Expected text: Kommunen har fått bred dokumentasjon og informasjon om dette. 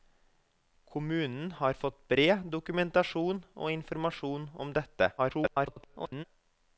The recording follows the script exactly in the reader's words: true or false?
false